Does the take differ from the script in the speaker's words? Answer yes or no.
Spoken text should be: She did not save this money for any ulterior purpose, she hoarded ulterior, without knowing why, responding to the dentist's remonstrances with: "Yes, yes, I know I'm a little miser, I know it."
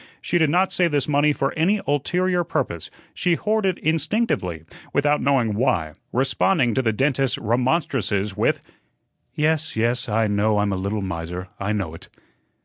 yes